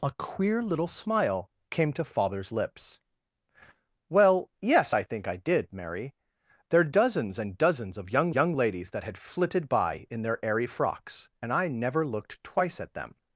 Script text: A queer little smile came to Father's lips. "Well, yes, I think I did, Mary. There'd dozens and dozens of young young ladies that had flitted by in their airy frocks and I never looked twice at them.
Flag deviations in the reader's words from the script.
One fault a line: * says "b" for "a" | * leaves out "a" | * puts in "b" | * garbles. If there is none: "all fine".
all fine